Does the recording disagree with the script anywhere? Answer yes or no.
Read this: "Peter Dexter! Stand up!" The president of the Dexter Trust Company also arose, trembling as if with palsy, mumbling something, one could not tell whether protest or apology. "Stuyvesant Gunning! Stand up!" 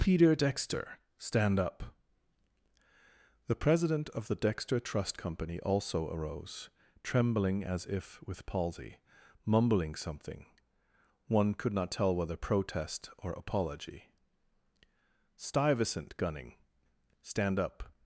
no